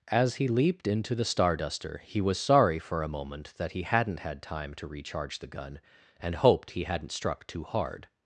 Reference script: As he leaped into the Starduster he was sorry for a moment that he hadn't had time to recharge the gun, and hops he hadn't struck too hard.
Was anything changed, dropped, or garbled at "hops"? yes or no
yes